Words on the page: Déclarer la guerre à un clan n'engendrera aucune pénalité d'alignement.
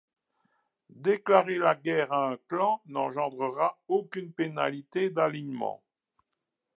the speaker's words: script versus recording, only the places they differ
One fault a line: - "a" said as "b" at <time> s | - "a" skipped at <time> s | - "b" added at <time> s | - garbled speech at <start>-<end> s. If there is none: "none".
none